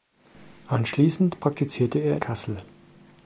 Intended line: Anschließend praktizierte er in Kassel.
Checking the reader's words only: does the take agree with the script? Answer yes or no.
no